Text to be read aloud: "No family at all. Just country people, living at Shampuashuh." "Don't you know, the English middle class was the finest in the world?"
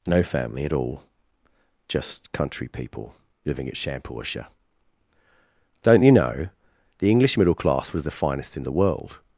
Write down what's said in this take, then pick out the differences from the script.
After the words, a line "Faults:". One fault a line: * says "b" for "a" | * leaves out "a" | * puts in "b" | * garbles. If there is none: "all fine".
"No family at all. Just country people, living at Shampuashuh." "Don't you know, the English middle class was the finest in the world?"
Faults:
all fine